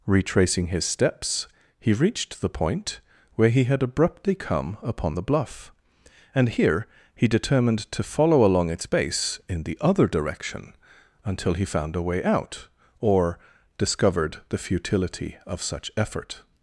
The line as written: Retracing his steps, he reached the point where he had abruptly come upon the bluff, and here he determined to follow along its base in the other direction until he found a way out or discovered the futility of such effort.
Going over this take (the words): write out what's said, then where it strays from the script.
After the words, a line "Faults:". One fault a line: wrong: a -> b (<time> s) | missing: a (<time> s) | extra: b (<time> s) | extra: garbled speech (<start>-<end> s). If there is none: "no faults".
Retracing his steps, he reached the point where he had abruptly come upon the bluff, and here he determined to follow along its base in the other direction until he found a way out or discovered the futility of such effort.
Faults:
no faults